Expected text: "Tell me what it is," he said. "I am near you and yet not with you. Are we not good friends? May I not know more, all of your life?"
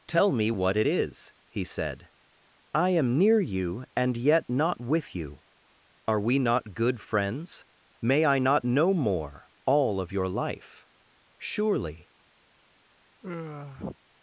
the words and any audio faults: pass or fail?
fail